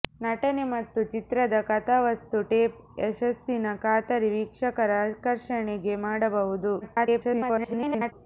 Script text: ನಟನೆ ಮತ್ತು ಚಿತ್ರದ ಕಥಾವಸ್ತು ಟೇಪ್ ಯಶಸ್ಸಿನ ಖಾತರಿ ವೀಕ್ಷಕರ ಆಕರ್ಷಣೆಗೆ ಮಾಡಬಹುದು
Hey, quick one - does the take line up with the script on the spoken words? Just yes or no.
no